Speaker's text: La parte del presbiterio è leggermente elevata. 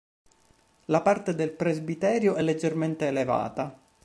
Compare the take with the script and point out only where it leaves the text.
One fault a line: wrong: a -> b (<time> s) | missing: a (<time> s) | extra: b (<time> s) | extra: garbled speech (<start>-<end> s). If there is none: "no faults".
no faults